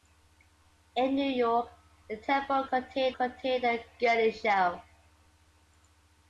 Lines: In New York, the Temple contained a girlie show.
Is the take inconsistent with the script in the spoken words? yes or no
yes